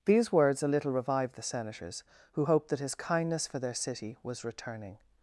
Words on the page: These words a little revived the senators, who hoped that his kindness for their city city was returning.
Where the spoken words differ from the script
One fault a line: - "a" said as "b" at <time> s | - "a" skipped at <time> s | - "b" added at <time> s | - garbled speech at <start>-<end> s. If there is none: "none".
- "city" skipped at 4.2 s